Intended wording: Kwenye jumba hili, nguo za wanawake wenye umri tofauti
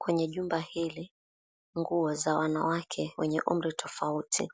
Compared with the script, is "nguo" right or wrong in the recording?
right